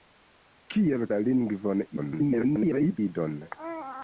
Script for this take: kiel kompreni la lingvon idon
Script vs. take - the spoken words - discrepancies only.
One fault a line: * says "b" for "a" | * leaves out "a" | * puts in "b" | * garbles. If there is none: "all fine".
* leaves out "kompreni"
* garbles